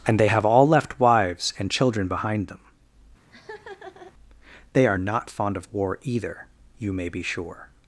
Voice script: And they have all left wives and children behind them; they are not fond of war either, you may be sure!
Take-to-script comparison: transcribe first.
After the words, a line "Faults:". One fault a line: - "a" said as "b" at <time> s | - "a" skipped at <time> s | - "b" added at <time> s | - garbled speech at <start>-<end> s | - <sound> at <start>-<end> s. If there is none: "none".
And they have all left wives and children behind them; they are not fond of war either, you may be sure!
Faults:
- laugh at 3.3-4.1 s